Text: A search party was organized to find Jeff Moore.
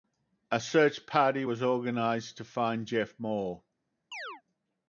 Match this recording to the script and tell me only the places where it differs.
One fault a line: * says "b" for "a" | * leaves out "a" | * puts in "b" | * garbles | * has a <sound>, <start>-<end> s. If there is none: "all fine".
* has a chirp, 4.1-4.4 s